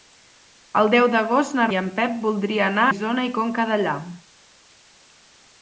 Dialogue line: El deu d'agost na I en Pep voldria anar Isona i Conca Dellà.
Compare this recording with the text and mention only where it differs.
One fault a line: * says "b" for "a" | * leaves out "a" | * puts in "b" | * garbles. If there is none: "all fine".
all fine